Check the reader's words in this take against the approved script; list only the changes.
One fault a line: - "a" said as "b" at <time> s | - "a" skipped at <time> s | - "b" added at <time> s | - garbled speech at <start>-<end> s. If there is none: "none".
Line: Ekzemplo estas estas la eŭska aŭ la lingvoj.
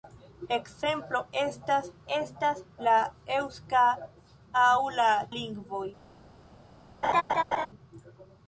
none